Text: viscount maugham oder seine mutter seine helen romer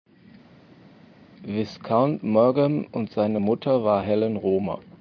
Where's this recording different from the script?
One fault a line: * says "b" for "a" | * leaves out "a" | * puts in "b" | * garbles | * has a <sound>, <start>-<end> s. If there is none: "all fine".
* says "und" for "oder"
* says "war" for "seine"